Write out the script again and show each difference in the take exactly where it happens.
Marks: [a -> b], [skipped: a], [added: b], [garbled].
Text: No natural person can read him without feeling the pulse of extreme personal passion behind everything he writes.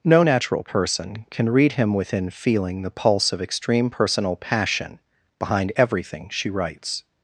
No natural person can read him [without -> within] feeling the pulse of extreme personal passion behind everything [he -> she] writes.